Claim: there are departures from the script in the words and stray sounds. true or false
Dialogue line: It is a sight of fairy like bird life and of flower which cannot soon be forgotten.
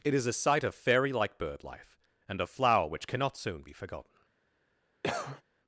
true